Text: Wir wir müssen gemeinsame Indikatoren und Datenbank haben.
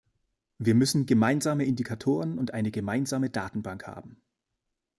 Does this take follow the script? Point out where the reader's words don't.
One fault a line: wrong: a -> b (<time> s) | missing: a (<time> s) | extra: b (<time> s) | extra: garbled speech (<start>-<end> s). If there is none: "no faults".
missing: wir (0.7 s)
extra: eine gemeinsame (2.5 s)